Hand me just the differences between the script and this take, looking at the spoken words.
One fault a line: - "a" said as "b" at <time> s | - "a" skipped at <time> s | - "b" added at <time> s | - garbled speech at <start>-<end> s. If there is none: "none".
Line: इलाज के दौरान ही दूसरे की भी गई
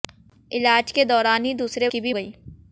none